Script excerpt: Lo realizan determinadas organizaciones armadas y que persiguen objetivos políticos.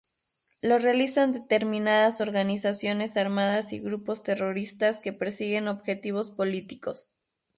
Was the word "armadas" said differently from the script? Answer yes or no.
no